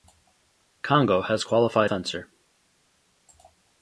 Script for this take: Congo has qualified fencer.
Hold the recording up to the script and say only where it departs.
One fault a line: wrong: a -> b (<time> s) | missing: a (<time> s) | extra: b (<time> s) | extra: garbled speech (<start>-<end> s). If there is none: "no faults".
no faults